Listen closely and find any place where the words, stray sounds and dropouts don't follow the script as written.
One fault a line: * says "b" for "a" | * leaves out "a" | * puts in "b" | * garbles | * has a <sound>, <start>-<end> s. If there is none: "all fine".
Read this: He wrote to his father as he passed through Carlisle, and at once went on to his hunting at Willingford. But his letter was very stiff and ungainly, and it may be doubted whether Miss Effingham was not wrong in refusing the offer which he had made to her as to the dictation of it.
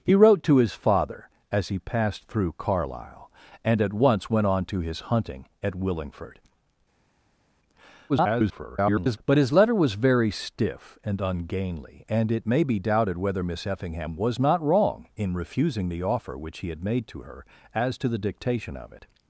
* garbles